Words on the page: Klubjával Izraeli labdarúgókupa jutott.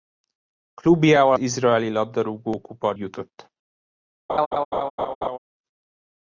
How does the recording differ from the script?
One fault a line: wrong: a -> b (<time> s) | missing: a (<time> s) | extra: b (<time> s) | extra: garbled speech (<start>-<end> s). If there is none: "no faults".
no faults